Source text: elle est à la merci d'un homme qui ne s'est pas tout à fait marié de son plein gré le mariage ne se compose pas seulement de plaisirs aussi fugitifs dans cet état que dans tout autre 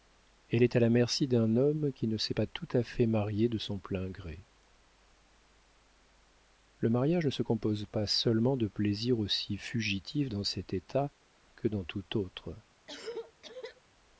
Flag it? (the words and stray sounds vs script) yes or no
yes